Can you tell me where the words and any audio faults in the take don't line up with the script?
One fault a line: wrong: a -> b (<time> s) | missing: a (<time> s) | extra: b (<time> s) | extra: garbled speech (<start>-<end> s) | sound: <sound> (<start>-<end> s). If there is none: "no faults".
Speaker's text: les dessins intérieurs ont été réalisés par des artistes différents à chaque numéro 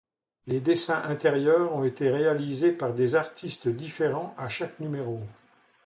no faults